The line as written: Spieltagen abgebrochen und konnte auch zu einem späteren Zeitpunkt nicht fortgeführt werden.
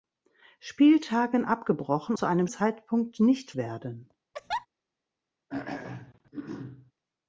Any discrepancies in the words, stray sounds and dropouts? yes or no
yes